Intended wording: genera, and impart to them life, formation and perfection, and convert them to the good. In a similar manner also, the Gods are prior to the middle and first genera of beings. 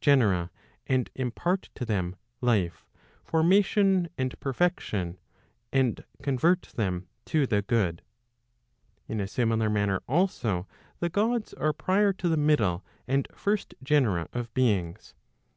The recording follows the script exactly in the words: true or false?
true